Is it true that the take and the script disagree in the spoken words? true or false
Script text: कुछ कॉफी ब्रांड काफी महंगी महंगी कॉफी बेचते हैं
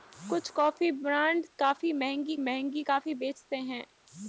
false